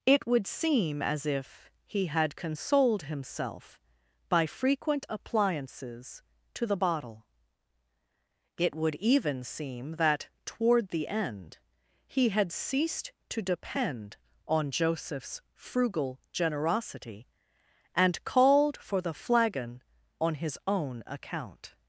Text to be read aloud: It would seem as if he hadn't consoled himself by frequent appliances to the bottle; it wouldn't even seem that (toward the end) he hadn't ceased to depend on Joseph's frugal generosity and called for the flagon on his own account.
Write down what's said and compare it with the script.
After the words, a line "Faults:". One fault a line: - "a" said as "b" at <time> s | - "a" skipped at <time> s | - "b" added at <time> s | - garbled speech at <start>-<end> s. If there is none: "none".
It would seem as if he had consoled himself by frequent appliances to the bottle; it would even seem that (toward the end) he had ceased to depend on Joseph's frugal generosity and called for the flagon on his own account.
Faults:
- "hadn't" said as "had" at 2.1 s
- "wouldn't" said as "would" at 8.7 s
- "hadn't" said as "had" at 12.3 s